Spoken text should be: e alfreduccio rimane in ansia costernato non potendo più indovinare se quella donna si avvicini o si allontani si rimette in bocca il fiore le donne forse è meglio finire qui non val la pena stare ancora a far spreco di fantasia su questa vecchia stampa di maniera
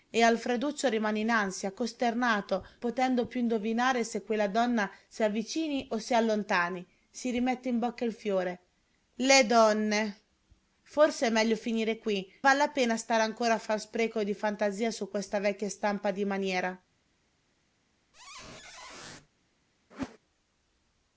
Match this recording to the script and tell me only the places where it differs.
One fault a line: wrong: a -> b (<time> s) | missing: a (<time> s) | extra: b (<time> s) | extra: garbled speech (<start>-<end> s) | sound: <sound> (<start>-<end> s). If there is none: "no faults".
missing: non (2.6 s)
missing: non (12.2 s)
sound: squeak (18.1-19.3 s)
sound: whoosh (19.9-20.2 s)